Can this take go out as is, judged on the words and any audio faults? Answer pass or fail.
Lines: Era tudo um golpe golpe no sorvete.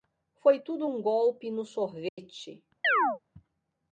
fail